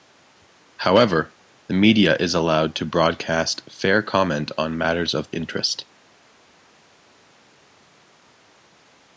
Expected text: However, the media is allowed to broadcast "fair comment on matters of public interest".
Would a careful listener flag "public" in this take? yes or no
yes